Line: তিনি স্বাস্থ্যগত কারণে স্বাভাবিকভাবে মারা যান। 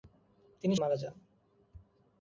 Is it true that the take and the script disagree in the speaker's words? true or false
true